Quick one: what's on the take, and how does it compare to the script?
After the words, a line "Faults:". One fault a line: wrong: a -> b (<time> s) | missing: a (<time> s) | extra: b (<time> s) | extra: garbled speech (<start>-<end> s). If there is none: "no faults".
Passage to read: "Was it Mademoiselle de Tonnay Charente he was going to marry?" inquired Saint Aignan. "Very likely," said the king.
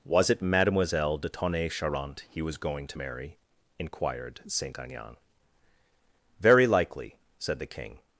"Was it Mademoiselle de Tonnay Charente he was going to marry?" inquired Saint Aignan. "Very likely," said the king.
Faults:
no faults